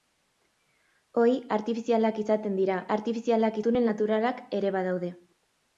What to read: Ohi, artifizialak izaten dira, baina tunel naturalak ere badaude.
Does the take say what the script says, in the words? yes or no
no